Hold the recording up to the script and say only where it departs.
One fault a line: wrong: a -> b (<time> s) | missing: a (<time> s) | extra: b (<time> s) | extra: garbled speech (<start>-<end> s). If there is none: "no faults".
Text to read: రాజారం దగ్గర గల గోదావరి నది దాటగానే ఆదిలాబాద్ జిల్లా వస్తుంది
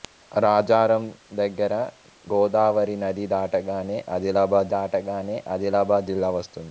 missing: గల (1.7 s)
extra: దాటగానే ఆదిలాబాద్ (4.7 s)